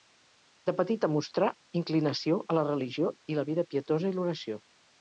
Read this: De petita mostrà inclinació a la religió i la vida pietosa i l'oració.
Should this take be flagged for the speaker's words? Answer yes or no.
no